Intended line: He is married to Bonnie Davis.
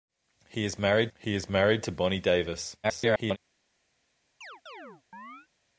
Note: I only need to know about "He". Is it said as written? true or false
true